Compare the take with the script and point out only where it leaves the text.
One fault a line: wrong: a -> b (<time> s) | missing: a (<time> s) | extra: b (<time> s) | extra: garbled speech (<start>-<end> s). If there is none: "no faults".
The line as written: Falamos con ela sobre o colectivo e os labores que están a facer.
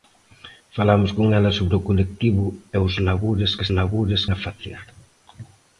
wrong: están -> labores (3.8 s)